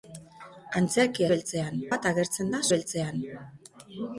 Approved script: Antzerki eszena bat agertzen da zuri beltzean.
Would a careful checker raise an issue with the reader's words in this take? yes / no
yes